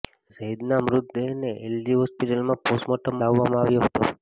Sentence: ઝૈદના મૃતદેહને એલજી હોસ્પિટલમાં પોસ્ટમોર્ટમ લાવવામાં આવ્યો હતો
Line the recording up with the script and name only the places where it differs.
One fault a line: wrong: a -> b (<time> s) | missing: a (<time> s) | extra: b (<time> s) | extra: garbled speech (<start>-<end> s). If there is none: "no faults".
no faults